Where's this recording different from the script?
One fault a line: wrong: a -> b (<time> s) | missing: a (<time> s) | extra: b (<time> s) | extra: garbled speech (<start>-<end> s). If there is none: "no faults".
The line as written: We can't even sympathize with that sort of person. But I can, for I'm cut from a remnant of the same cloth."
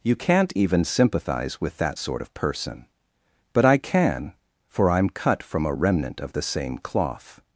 wrong: We -> You (0.0 s)